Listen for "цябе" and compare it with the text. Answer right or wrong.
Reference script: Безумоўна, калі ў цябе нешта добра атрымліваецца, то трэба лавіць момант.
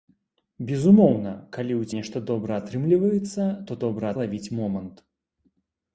wrong